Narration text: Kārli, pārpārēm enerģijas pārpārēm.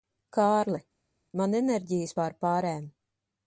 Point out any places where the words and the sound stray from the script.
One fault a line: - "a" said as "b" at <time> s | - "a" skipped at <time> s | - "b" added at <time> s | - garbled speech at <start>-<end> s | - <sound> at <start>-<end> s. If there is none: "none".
- "pārpārēm" said as "man" at 1.4 s